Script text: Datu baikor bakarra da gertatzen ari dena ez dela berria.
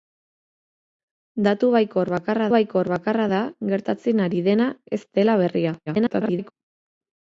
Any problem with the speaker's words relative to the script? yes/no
yes